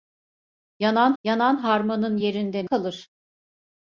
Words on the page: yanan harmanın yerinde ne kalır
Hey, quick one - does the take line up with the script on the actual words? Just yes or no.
no